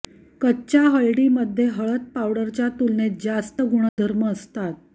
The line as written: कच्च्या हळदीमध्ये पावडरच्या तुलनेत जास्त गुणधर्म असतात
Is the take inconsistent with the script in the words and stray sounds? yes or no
yes